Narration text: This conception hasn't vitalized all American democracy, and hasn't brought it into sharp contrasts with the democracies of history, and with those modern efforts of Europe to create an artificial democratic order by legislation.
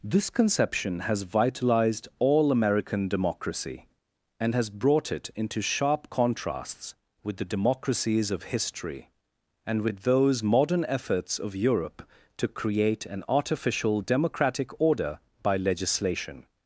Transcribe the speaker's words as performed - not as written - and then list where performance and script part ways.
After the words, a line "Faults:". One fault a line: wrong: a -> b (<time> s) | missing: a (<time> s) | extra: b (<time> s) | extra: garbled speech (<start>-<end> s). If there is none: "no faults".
This conception has vitalized all American democracy, and has brought it into sharp contrasts with the democracies of history, and with those modern efforts of Europe to create an artificial democratic order by legislation.
Faults:
wrong: hasn't -> has (1.0 s)
wrong: hasn't -> has (4.5 s)